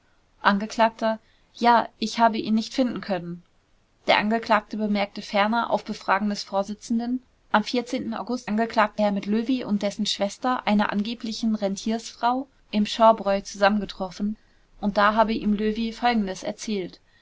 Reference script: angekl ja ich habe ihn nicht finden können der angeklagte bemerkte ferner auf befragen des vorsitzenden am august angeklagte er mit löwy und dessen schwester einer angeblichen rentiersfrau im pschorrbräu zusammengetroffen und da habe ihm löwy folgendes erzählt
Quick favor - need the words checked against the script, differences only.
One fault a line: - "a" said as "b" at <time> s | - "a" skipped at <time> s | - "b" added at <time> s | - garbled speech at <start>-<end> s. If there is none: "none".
none